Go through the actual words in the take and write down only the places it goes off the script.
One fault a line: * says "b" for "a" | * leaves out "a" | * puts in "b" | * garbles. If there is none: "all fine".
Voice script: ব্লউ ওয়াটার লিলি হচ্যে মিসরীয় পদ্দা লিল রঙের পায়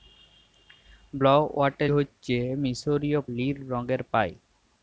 * leaves out "লিলি"
* leaves out "পদ্দা"